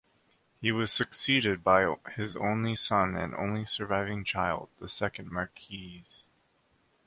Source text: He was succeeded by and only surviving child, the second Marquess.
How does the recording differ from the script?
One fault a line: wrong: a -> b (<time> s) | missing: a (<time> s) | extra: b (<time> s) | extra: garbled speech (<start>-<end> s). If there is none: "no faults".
extra: his only son (2.1 s)